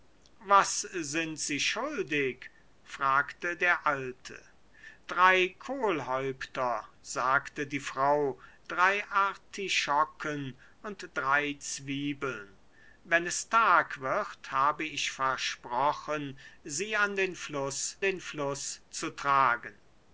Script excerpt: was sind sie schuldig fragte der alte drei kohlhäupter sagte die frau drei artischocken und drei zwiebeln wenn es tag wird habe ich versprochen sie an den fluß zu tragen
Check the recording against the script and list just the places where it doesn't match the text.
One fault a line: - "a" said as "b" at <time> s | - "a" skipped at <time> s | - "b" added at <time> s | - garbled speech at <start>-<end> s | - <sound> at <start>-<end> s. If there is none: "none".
- "den fluß" added at 18.0 s